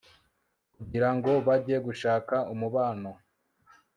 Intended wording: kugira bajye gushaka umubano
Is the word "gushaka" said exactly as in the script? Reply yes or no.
yes